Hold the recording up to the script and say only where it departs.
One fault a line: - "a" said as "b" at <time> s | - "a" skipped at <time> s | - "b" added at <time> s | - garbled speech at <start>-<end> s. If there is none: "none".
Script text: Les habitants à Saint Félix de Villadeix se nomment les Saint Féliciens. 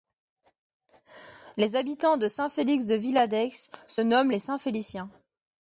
- "à" said as "de" at 2.2 s